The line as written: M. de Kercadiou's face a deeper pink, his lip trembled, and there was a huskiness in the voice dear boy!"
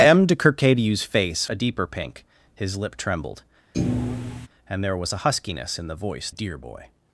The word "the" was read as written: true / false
true